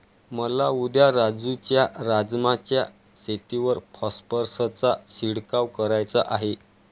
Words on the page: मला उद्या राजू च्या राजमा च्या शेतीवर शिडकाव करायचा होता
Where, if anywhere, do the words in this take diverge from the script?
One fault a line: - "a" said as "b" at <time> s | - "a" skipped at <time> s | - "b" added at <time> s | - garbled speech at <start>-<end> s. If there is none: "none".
- "फॉस्फरसचा" added at 4.0 s
- "होता" said as "आहे" at 6.3 s